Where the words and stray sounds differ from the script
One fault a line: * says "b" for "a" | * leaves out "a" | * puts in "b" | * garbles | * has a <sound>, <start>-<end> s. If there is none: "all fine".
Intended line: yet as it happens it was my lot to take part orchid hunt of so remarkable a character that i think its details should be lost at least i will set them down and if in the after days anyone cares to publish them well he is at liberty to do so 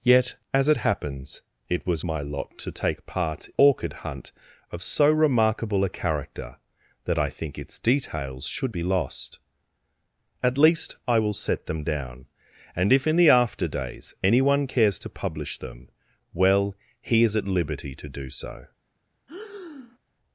* has a breath, 19.3-20.0 s